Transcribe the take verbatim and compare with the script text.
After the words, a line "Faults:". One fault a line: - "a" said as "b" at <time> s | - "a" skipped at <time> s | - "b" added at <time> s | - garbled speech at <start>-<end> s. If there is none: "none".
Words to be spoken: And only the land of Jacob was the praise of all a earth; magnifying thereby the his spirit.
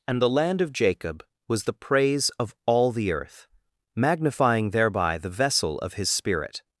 And the land of Jacob was the praise of all the earth; magnifying thereby the vessel of his spirit.
Faults:
- "only" skipped at 0.2 s
- "a" said as "the" at 2.9 s
- "vessel of" added at 5.3 s